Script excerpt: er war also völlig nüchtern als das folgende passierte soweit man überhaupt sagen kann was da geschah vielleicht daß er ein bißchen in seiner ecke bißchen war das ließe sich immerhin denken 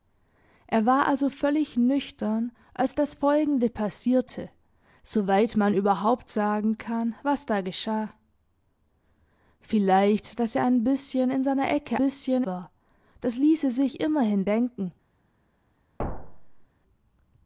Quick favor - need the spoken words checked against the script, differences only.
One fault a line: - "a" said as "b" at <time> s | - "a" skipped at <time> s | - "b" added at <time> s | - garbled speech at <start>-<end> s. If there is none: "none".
none